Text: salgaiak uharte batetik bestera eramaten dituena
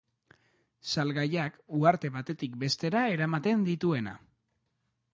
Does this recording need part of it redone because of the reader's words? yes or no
no